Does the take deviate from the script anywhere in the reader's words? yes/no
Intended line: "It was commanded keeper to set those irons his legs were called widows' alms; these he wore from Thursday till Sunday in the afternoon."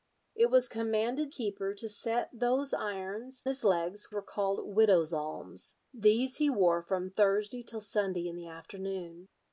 no